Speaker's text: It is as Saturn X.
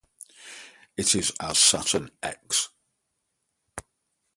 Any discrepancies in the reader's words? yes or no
no